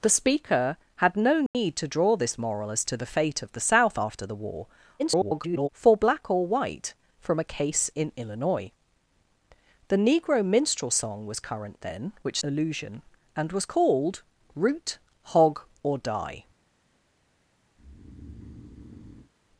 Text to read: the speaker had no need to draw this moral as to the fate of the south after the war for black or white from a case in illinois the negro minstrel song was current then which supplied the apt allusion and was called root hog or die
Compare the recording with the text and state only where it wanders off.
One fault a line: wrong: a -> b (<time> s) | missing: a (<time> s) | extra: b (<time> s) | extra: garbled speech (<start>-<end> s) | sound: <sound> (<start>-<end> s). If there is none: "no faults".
sound: dropout (1.5-1.5 s)
extra: garbled speech (5.0-5.7 s)
missing: supplied the apt (12.4 s)
sound: breath (17.8-19.3 s)